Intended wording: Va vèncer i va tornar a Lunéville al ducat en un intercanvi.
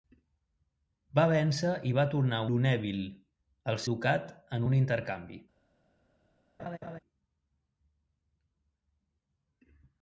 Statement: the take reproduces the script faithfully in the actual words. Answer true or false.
true